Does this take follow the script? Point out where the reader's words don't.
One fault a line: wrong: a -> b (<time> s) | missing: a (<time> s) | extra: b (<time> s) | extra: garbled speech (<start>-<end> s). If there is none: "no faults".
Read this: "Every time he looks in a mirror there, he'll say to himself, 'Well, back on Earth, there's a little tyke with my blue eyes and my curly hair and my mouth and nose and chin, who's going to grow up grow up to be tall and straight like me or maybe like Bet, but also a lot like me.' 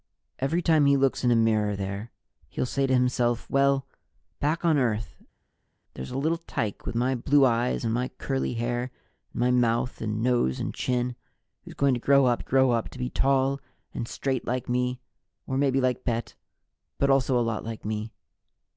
no faults